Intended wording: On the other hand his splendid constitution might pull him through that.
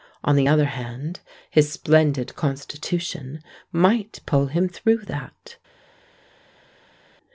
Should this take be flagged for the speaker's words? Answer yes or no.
no